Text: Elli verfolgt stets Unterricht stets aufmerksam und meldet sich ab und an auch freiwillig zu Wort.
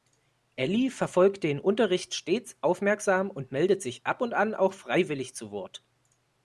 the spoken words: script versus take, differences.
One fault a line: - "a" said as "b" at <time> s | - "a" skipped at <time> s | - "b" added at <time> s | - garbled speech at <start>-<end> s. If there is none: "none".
- "stets" said as "den" at 1.4 s